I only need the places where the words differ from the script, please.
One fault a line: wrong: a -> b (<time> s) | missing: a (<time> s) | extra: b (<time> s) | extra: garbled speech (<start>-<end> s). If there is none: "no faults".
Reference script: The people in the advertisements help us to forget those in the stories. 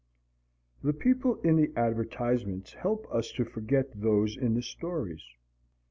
no faults